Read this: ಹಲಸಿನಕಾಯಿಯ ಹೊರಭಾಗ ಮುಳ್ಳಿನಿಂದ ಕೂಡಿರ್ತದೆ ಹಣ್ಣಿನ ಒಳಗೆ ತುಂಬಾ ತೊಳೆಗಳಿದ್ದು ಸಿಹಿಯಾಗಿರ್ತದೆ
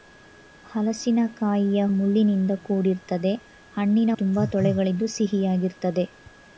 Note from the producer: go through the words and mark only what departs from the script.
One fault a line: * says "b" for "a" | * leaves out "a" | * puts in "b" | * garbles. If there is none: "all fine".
* leaves out "ಹೊರಭಾಗ"
* leaves out "ಒಳಗೆ"